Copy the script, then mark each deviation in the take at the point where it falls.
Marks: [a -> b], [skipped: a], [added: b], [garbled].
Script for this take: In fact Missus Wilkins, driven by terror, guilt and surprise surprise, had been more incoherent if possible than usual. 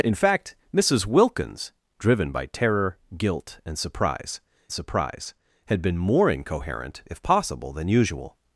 In fact Missus Wilkins, driven by terror, guilt and surprise surprise, had been more incoherent if possible than usual.